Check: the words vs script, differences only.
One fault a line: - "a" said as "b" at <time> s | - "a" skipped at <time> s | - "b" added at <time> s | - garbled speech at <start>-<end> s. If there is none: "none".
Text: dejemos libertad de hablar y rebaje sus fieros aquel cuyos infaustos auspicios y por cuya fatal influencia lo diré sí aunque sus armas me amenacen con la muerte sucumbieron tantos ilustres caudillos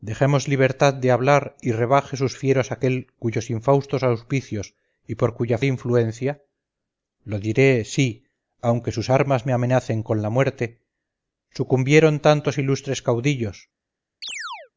- "fatal" skipped at 5.6 s